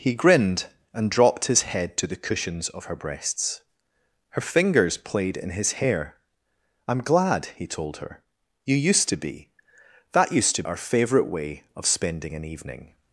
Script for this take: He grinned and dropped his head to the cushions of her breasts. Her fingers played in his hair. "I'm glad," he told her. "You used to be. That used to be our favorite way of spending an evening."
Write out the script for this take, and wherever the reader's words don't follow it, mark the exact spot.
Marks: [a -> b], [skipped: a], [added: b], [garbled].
He grinned and dropped his head to the cushions of her breasts. Her fingers played in his hair. "I'm glad," he told her. "You used to be. That used to [skipped: be] our favorite way of spending an evening."